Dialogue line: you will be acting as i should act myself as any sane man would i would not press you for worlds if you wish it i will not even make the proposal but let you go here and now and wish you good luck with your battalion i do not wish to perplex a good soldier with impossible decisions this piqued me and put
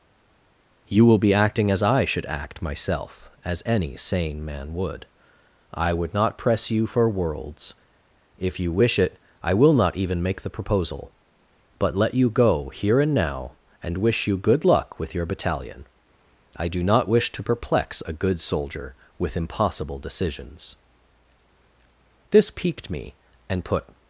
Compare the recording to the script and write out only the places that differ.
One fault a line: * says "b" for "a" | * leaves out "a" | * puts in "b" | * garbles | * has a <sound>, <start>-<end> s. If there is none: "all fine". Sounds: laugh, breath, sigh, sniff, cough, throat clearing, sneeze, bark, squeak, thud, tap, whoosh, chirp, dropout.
all fine